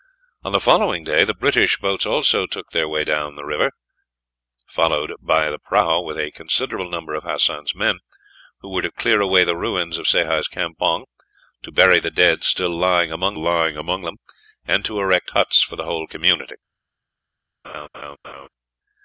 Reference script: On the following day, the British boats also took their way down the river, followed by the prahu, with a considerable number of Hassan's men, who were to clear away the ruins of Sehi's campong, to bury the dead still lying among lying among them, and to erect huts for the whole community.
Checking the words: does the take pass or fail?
pass